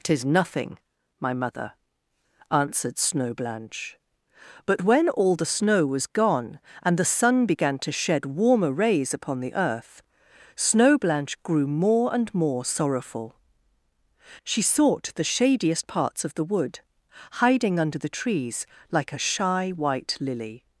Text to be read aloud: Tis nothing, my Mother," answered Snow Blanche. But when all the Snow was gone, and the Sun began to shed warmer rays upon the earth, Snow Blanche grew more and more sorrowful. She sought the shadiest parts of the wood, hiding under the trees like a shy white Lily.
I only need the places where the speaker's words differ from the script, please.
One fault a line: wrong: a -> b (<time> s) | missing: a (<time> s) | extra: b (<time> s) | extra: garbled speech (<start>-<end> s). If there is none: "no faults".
no faults